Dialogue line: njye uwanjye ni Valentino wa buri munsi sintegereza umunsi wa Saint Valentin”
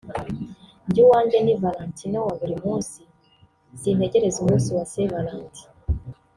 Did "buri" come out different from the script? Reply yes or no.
no